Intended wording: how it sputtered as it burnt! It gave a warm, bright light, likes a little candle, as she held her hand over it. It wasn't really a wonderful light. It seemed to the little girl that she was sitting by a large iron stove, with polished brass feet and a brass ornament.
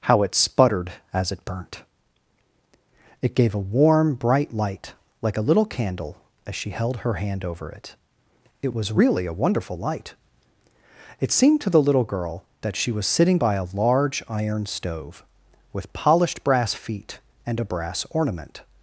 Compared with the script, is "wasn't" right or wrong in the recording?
wrong